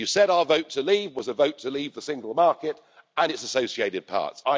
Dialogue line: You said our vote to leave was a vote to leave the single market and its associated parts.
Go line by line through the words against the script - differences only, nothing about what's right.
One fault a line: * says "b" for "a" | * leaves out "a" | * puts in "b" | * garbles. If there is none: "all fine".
all fine